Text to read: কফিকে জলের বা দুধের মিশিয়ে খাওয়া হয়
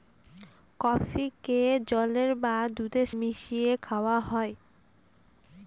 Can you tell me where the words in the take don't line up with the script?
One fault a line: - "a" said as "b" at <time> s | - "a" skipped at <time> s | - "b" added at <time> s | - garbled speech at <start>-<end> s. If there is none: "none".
none